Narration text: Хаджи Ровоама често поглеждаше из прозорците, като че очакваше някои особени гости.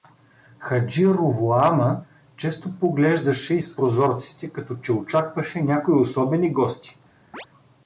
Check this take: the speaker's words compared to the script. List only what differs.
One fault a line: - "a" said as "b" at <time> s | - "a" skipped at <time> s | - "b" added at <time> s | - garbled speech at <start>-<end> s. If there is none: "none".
none